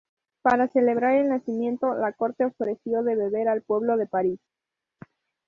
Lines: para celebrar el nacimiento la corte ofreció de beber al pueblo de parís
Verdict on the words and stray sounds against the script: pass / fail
pass